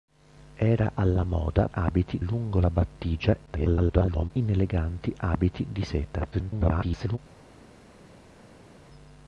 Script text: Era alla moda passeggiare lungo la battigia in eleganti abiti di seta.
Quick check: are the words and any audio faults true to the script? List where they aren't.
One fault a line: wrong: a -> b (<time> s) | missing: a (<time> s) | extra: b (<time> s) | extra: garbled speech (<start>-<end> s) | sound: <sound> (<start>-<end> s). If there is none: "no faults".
wrong: passeggiare -> abiti (1.7 s)
extra: garbled speech (3.5-4.3 s)
extra: garbled speech (6.3-7.2 s)